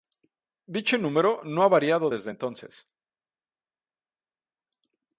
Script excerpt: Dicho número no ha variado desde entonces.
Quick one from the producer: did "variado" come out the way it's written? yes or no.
yes